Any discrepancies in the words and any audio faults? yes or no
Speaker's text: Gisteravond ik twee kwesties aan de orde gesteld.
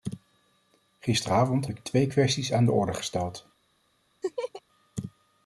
yes